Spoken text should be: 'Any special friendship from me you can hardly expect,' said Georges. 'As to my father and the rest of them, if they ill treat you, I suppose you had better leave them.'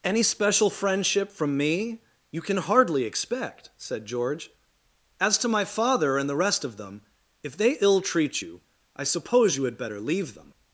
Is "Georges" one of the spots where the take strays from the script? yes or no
yes